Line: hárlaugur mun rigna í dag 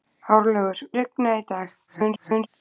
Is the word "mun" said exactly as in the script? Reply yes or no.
no